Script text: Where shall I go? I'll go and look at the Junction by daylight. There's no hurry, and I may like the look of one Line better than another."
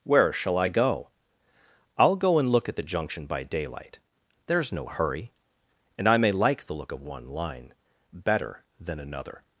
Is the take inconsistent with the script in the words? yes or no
no